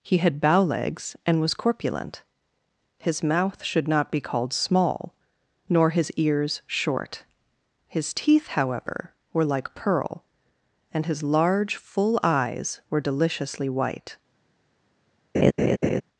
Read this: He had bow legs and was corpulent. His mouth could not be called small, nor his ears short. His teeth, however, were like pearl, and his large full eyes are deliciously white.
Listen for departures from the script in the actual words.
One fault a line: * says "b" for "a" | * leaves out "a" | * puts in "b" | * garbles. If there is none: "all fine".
* says "should" for "could"
* says "were" for "are"